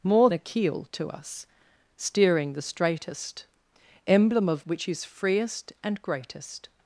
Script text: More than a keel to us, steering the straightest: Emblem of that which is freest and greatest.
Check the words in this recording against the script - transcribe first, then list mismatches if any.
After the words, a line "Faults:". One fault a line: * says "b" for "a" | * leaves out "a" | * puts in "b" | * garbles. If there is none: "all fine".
More a keel to us, steering the straightest: Emblem of which is freest and greatest.
Faults:
* leaves out "than"
* leaves out "that"